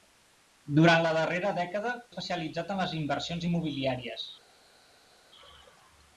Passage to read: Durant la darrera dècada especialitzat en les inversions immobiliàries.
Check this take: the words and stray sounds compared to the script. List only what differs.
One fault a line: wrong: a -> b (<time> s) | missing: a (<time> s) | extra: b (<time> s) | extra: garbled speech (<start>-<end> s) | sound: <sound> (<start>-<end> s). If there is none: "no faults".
no faults